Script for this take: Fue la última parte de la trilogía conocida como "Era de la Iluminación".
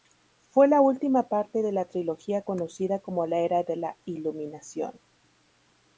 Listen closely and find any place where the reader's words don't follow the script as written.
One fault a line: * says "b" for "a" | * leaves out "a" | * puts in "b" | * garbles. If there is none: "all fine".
* puts in "la"